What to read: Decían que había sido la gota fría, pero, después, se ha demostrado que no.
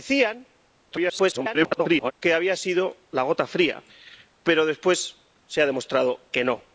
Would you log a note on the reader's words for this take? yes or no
yes